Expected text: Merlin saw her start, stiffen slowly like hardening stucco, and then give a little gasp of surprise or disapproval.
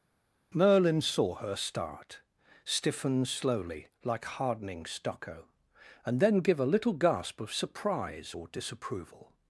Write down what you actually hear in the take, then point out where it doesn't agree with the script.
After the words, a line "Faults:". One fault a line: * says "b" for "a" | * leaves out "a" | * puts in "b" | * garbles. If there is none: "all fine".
Merlin saw her start, stiffen slowly like hardening stucco, and then give a little gasp of surprise or disapproval.
Faults:
all fine